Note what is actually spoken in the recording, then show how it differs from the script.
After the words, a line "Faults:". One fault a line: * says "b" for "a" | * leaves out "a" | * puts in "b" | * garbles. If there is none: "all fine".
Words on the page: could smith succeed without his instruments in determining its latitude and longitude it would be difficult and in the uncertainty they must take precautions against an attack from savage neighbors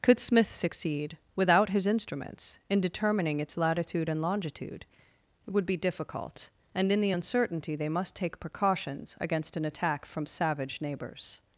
could smith succeed without his instruments in determining its latitude and longitude it would be difficult and in the uncertainty they must take precautions against an attack from savage neighbors
Faults:
all fine